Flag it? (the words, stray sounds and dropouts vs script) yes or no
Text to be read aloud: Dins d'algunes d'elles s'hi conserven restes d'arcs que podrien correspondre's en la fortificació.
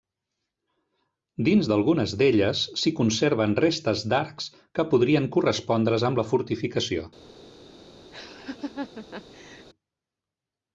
yes